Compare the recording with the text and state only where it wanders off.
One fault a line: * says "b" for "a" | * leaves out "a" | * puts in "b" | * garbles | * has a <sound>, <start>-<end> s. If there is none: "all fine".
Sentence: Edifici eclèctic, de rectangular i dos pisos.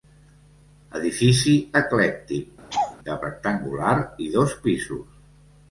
* has a laugh, 2.7-3.0 s